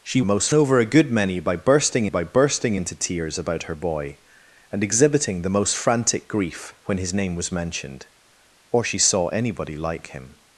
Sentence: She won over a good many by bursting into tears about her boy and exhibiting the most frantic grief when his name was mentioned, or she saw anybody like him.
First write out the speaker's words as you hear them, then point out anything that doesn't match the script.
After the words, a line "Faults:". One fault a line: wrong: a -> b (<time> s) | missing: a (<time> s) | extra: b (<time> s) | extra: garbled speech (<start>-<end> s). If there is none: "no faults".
She most over a good many by bursting by bursting into tears about her boy and exhibiting the most frantic grief when his name was mentioned, or she saw anybody like him.
Faults:
wrong: won -> most (0.2 s)
extra: by bursting (2.1 s)